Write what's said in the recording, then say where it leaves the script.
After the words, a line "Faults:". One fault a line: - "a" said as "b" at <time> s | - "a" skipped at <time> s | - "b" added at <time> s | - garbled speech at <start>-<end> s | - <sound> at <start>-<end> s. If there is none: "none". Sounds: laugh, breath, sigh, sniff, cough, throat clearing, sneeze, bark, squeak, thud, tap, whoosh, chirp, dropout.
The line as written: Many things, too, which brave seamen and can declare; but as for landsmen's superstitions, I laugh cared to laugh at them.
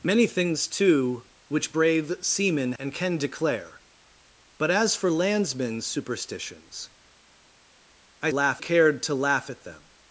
Many things, too, which brave seamen and can declare; but as for landsmen's superstitions, I laugh cared to laugh at them.
Faults:
none